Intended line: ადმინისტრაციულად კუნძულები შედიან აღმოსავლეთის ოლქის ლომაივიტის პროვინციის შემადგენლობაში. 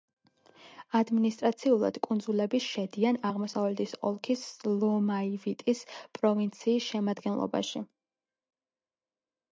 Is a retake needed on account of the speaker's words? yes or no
no